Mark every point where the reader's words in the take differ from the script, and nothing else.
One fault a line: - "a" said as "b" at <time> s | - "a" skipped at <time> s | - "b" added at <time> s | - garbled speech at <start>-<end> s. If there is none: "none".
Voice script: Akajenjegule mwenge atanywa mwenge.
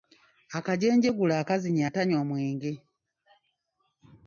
- "mwenge" said as "akazinya" at 1.4 s